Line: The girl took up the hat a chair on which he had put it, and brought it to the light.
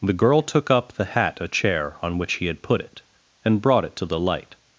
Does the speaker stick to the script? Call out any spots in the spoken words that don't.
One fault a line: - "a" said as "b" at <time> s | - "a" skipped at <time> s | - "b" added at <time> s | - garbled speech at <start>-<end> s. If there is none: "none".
none